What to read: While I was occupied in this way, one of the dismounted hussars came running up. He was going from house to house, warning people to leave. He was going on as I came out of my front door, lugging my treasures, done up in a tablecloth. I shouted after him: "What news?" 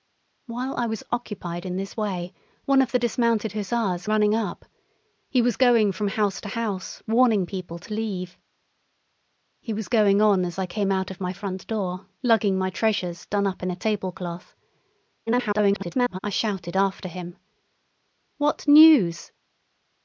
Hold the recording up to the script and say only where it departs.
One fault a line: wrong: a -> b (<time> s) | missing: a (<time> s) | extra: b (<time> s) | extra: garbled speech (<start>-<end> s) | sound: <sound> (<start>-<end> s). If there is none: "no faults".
missing: came (4.1 s)
extra: garbled speech (15.3-16.2 s)